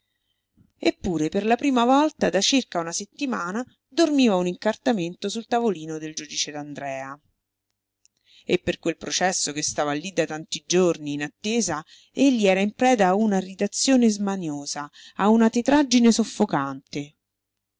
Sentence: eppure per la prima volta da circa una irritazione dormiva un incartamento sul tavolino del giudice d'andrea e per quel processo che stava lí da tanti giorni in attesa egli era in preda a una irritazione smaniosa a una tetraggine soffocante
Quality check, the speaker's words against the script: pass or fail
fail